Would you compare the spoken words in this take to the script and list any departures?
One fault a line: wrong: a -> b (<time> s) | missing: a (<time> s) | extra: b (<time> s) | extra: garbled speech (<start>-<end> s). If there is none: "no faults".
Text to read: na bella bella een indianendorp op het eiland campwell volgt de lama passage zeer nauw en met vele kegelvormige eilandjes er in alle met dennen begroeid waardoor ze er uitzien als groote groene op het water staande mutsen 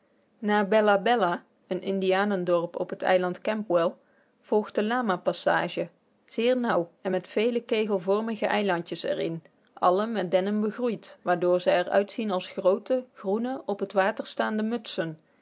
no faults